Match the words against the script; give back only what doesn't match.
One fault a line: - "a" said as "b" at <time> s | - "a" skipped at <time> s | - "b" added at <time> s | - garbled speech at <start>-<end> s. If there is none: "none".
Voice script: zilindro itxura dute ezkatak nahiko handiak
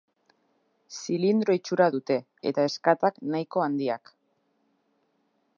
- "eta" added at 2.5 s